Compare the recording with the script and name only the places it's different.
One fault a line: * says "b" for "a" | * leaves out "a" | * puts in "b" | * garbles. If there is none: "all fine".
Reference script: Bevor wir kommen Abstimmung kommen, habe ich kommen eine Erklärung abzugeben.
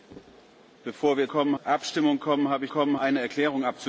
all fine